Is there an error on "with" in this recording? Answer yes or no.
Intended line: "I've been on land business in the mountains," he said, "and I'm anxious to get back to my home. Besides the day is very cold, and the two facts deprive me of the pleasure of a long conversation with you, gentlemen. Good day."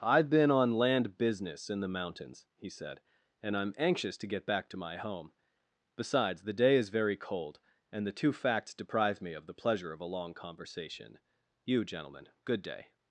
yes